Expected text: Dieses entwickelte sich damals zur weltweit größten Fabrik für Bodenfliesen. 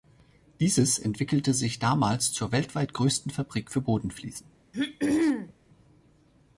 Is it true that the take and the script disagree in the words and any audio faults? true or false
true